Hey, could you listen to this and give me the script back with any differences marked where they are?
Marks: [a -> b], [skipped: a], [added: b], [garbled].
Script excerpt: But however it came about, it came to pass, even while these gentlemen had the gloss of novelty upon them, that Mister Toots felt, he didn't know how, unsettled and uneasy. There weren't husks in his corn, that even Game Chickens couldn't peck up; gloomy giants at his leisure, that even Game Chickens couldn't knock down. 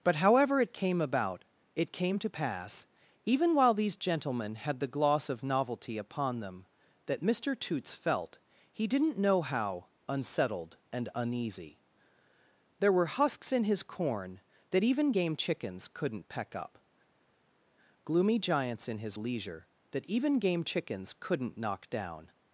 But however it came about, it came to pass, even while these gentlemen had the gloss of novelty upon them, that Mister Toots felt, he didn't know how, unsettled and uneasy. There [weren't -> were] husks in his corn, that even Game Chickens couldn't peck up; gloomy giants [at -> in] his leisure, that even Game Chickens couldn't knock down.